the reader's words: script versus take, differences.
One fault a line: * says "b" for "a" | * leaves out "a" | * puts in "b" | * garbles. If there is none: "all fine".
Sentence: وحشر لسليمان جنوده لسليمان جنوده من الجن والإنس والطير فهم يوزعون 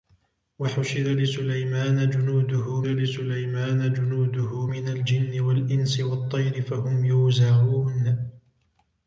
all fine